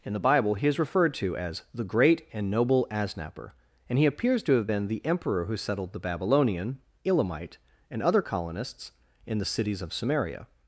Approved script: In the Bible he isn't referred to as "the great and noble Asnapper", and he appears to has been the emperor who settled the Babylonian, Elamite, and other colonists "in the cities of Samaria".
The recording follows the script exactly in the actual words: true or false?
false